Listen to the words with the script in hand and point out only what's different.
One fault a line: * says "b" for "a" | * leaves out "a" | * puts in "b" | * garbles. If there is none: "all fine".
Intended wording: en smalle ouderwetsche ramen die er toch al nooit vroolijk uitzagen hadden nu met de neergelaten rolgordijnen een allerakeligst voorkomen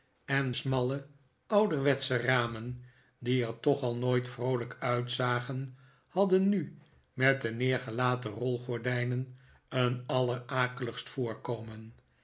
all fine